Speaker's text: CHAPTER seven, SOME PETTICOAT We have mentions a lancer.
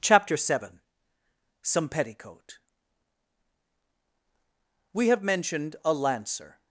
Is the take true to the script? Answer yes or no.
no